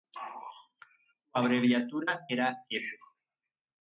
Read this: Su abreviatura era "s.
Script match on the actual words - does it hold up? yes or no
yes